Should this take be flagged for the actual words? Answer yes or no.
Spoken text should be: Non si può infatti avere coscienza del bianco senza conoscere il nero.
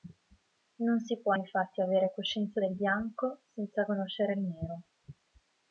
no